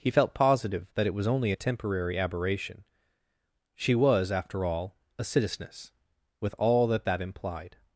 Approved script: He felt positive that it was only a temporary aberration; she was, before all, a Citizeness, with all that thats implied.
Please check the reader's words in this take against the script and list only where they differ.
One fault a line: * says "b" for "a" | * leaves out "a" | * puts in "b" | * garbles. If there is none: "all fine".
* says "after" for "before"
* says "that" for "thats"